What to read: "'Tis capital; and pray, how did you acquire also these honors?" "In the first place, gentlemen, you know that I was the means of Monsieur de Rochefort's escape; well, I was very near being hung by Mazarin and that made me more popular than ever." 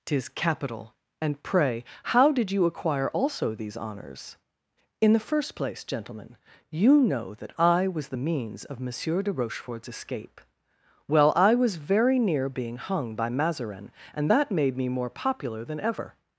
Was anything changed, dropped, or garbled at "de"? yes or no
no